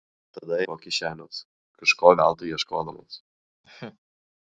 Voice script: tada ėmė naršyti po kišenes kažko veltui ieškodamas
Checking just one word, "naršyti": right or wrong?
wrong